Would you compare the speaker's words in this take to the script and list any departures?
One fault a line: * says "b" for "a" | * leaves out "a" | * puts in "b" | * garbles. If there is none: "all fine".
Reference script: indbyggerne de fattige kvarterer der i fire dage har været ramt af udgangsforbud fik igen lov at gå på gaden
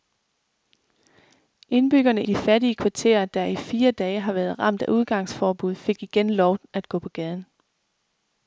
all fine